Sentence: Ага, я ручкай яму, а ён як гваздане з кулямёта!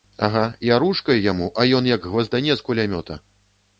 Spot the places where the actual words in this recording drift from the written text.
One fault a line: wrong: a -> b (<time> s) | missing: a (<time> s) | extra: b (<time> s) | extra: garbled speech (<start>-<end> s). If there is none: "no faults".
no faults